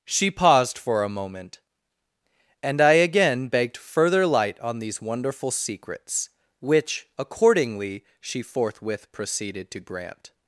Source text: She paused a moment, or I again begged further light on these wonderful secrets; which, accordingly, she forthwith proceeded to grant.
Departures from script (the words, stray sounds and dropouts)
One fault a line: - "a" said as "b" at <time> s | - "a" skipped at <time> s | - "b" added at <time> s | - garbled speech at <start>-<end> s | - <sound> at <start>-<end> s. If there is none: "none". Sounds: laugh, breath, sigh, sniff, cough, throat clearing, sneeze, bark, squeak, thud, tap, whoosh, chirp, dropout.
- "for" added at 0.8 s
- "or" said as "and" at 2.6 s